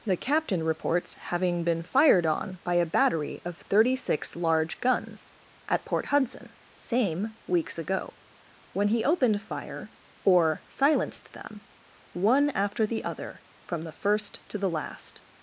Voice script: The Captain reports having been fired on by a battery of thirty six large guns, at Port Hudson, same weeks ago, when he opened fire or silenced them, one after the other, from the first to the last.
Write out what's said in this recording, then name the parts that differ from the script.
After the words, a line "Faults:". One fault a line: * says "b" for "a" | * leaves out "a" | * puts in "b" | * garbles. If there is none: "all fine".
The Captain reports having been fired on by a battery of thirty six large guns, at Port Hudson, same weeks ago, when he opened fire or silenced them, one after the other, from the first to the last.
Faults:
all fine